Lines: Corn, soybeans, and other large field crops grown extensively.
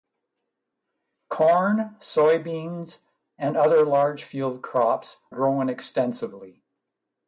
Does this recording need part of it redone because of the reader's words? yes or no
no